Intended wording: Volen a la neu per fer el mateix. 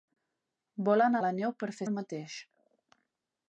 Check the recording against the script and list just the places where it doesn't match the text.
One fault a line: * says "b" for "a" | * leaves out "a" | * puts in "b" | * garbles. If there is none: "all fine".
all fine